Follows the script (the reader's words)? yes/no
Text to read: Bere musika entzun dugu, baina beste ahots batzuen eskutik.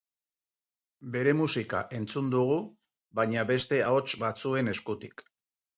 yes